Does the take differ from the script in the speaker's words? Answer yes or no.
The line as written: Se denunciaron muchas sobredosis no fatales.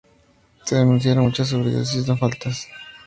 no